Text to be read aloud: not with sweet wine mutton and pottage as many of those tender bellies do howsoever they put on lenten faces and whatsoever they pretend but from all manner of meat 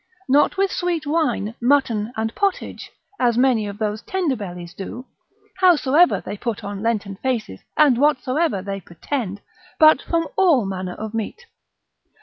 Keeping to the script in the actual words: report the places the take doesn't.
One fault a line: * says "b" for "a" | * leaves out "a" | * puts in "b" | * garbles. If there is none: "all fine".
all fine